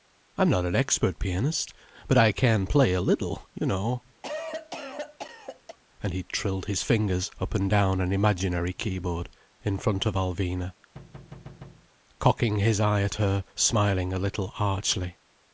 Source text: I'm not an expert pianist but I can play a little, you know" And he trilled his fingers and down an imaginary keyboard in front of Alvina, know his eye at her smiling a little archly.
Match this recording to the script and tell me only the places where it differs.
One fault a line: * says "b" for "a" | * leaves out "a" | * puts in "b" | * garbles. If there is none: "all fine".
* puts in "up"
* says "cocking" for "know"